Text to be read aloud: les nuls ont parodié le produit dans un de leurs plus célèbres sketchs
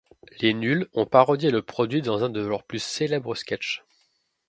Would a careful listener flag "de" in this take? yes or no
no